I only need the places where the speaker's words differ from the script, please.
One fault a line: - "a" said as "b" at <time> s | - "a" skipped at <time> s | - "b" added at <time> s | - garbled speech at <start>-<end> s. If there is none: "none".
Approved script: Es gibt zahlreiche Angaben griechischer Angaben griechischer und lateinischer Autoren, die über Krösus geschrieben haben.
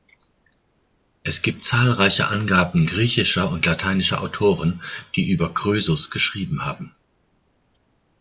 - "Angaben griechischer" skipped at 3.5 s